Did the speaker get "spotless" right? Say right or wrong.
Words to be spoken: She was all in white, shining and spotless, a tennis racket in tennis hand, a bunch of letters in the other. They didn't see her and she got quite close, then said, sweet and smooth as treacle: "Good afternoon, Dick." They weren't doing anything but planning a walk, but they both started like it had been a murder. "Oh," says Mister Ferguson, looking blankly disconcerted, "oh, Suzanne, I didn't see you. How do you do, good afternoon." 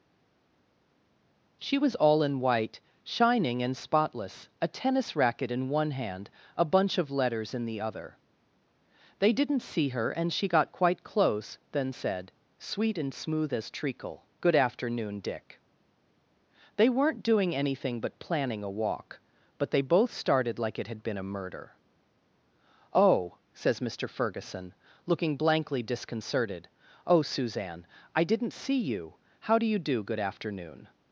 right